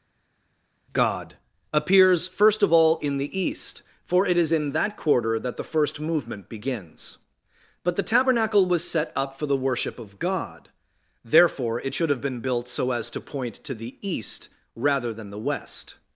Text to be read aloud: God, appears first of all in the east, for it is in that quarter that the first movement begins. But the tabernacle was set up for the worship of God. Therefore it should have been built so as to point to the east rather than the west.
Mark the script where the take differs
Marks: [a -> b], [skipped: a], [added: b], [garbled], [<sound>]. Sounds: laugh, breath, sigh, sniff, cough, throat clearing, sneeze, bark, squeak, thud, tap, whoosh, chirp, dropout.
God, appears first of all in the east, for it is in that quarter that the first movement begins. But the tabernacle was set up for the worship of God. Therefore it should have been built so as to point to the east rather than the west.